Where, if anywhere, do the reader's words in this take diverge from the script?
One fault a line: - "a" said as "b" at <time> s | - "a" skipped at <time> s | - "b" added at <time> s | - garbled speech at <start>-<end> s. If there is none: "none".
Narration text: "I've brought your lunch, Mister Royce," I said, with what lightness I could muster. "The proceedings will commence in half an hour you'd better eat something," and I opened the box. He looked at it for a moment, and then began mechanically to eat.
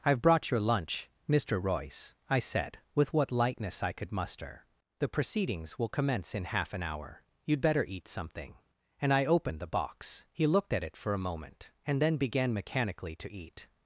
none